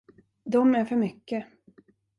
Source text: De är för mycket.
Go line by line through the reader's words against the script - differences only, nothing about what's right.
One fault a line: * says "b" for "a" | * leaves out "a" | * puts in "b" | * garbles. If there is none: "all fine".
all fine